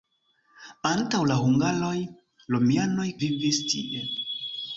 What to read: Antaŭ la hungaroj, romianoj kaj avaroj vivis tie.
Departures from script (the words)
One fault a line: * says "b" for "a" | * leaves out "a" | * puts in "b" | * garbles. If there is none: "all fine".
* leaves out "kaj avaroj"